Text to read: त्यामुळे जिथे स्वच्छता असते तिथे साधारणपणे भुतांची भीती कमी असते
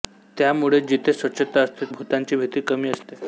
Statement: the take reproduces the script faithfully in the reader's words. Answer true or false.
false